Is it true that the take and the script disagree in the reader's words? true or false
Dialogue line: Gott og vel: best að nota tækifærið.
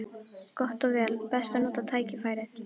false